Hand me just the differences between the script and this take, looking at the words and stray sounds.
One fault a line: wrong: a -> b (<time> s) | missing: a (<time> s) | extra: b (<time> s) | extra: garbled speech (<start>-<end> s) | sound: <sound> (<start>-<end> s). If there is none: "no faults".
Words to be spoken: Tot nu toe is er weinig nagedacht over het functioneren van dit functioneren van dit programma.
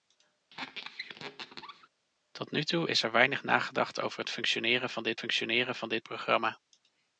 sound: squeak (0.5-1.9 s)